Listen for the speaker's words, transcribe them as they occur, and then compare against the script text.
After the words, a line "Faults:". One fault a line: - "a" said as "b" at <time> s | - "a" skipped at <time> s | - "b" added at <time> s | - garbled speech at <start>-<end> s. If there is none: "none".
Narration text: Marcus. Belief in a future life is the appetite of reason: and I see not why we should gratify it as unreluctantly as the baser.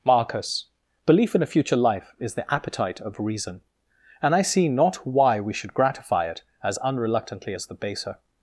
Marcus. Belief in a future life is the appetite of reason: and I see not why we should gratify it as unreluctantly as the baser.
Faults:
none